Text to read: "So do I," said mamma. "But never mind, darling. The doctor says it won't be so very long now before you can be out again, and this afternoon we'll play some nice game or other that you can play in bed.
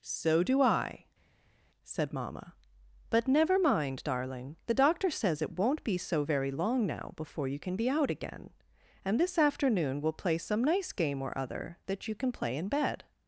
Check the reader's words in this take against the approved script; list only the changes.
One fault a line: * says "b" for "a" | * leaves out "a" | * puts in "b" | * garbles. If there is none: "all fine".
all fine